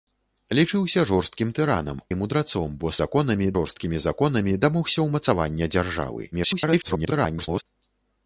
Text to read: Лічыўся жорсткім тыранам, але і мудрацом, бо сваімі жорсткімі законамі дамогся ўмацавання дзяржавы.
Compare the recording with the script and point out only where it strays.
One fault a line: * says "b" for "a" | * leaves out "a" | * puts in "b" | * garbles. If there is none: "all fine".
* leaves out "але"
* says "законамі" for "сваімі"
* garbles